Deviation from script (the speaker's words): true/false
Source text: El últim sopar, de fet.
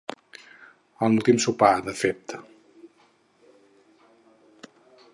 false